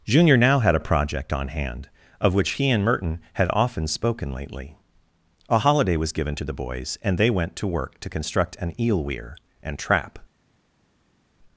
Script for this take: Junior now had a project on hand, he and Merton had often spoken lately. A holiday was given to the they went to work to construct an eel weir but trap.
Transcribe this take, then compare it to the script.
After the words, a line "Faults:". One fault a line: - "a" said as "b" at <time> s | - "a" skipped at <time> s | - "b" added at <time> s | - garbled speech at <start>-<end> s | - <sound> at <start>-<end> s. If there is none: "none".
Junior now had a project on hand, of which he and Merton had often spoken lately. A holiday was given to the boys and they went to work to construct an eel weir and trap.
Faults:
- "of which" added at 2.2 s
- "boys and" added at 6.5 s
- "but" said as "and" at 9.6 s